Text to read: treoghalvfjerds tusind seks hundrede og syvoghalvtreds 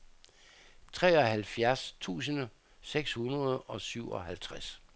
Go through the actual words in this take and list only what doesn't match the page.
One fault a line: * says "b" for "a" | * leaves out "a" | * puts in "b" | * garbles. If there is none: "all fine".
all fine